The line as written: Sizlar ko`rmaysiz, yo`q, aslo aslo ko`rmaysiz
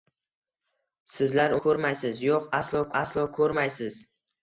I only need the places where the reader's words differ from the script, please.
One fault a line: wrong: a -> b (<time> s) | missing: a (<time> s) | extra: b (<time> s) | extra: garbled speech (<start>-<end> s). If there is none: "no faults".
no faults